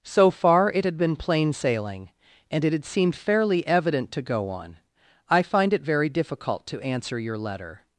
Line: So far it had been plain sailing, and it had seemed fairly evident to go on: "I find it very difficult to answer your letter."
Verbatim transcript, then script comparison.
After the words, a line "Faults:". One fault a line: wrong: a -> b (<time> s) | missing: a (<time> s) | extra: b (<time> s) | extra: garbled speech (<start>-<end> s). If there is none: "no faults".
So far it had been plain sailing, and it had seemed fairly evident to go on: "I find it very difficult to answer your letter."
Faults:
no faults